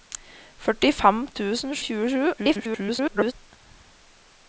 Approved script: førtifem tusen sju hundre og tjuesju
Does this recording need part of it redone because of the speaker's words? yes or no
yes